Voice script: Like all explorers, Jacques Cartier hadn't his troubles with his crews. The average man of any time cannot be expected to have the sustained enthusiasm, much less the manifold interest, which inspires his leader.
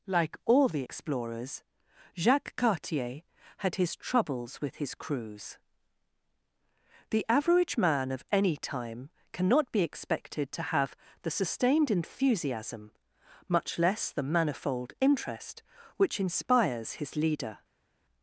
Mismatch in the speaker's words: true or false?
true